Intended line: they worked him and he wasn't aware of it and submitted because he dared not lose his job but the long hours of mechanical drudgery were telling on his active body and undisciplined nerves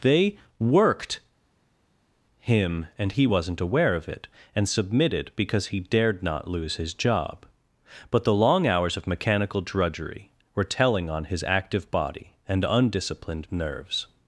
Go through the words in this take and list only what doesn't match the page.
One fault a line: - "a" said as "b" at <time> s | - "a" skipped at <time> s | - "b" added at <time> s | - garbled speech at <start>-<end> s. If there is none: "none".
none